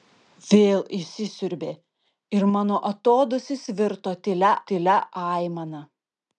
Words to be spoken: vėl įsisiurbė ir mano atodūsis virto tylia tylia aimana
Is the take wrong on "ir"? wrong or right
right